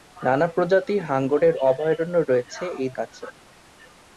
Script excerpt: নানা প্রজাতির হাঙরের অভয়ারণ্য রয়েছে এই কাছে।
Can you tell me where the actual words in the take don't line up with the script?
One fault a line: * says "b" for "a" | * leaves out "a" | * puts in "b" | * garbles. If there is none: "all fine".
all fine